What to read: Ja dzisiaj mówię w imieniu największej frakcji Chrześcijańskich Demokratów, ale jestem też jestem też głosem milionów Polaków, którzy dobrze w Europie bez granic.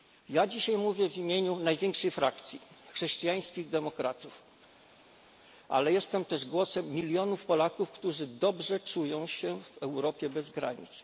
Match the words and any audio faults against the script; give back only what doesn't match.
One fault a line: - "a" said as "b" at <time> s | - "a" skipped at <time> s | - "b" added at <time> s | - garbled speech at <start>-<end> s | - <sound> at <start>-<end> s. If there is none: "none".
- "jestem też" skipped at 6.4 s
- "czują się" added at 8.8 s